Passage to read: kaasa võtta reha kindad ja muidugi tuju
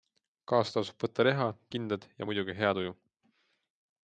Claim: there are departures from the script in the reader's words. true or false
true